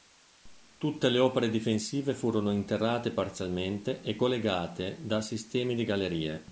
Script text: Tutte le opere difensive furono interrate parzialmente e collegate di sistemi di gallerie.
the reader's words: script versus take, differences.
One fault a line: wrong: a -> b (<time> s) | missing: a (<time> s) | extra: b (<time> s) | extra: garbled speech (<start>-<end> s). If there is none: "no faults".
wrong: di -> da (5.0 s)